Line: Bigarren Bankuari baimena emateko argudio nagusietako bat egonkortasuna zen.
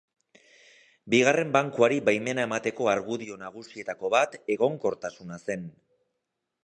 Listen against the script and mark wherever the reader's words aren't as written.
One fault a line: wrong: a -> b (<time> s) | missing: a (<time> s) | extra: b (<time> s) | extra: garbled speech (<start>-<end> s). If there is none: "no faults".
no faults